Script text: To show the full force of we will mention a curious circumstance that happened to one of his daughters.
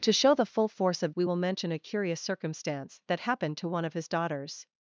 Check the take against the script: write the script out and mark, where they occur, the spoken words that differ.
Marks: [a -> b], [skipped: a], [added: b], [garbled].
To show the full force of we will mention a curious circumstance that happened to one of his daughters.